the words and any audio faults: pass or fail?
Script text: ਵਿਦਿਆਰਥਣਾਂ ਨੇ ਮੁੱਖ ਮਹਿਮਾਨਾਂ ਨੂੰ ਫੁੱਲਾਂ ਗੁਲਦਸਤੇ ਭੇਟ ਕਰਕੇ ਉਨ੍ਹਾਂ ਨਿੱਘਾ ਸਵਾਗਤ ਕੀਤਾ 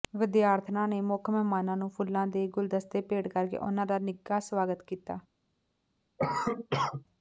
fail